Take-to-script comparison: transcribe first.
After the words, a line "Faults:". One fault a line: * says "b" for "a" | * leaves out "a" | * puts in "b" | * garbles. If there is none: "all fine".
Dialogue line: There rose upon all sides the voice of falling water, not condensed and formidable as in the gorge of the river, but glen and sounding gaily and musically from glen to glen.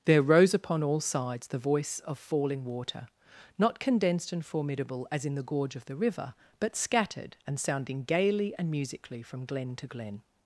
There rose upon all sides the voice of falling water, not condensed and formidable as in the gorge of the river, but scattered and sounding gaily and musically from glen to glen.
Faults:
* says "scattered" for "glen"